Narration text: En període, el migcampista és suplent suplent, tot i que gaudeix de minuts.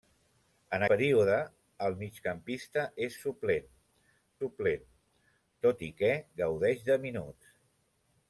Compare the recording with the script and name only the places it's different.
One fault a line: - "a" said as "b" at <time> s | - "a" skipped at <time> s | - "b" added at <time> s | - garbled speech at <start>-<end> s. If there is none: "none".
none